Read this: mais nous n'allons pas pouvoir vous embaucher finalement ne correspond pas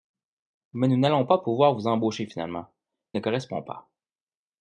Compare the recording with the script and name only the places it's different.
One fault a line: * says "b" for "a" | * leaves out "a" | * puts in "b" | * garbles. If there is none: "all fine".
all fine